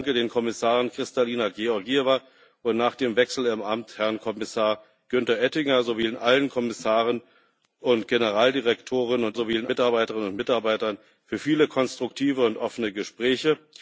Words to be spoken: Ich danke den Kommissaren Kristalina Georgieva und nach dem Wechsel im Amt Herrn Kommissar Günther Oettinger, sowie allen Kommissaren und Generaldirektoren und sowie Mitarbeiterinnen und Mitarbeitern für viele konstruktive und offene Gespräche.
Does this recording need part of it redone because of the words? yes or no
no